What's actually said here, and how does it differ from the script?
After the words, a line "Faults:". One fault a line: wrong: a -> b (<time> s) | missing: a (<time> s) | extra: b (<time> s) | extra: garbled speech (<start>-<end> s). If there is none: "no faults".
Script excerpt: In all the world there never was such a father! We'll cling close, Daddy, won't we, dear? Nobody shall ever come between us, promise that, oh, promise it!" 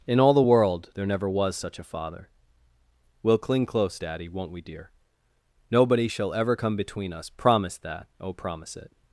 In all the world there never was such a father! We'll cling close, Daddy, won't we, dear? Nobody shall ever come between us, promise that, oh, promise it!"
Faults:
no faults